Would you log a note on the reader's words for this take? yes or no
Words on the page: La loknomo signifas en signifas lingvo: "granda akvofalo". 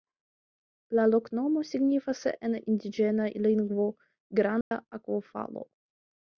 yes